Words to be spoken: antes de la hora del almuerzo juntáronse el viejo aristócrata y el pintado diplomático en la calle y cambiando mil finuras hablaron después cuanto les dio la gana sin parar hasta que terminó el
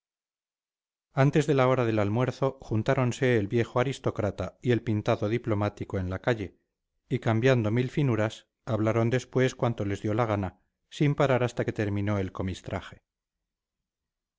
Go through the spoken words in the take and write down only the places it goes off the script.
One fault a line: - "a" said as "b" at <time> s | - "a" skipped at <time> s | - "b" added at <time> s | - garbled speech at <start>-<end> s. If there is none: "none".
none